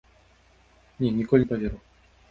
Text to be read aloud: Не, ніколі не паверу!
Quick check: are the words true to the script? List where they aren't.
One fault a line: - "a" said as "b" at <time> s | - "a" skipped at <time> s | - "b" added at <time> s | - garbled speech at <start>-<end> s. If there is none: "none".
none